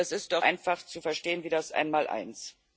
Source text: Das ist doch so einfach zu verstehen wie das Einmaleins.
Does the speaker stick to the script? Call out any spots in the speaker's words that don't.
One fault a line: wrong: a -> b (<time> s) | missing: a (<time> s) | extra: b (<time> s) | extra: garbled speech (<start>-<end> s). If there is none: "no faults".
missing: so (0.5 s)